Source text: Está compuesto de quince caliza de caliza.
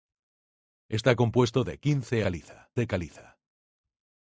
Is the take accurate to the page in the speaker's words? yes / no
yes